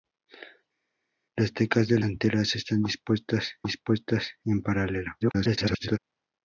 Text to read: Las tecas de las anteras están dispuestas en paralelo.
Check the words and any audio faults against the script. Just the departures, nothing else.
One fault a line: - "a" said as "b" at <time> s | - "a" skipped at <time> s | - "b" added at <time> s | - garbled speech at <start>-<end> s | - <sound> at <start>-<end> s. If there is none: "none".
- "las" skipped at 2.0 s
- "dispuestas" added at 3.6 s
- garbled speech at 5.2-6.0 s